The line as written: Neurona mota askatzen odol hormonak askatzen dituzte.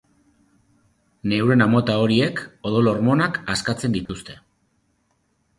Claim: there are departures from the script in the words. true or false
true